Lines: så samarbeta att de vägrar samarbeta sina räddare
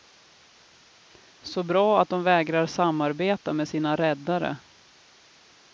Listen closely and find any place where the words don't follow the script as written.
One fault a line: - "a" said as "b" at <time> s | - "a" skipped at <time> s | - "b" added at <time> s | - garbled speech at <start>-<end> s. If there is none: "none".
- "samarbeta" said as "bra" at 1.6 s
- "med" added at 3.5 s